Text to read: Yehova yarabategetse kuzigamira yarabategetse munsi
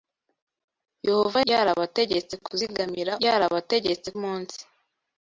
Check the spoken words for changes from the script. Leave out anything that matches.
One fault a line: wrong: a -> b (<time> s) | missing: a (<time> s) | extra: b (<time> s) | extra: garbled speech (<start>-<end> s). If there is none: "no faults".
no faults